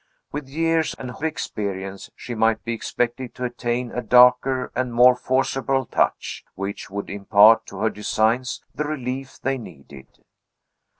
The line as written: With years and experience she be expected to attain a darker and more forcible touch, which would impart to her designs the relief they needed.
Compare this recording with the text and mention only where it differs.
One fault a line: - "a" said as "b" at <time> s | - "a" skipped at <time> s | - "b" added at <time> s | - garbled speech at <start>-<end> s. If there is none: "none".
- "might" added at 2.3 s